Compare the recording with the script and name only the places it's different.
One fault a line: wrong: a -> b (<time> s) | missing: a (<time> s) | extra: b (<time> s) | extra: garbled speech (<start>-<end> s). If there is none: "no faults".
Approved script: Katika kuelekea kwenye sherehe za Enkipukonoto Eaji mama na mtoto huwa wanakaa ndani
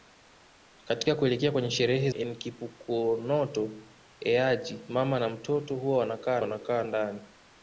missing: za (2.1 s)
extra: wanakaa (6.4 s)